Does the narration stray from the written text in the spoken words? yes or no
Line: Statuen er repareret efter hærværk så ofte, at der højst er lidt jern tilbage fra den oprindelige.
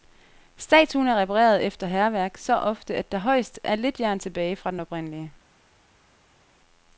no